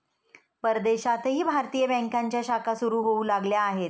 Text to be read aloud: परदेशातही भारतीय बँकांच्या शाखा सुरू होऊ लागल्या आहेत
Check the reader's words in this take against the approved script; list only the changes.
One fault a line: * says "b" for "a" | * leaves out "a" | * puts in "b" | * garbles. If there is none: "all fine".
all fine